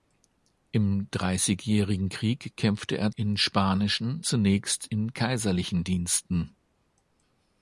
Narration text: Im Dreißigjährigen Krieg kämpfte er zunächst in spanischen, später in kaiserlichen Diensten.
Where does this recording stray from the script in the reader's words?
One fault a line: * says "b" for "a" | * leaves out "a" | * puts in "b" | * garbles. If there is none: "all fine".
* leaves out "zunächst"
* says "zunächst" for "später"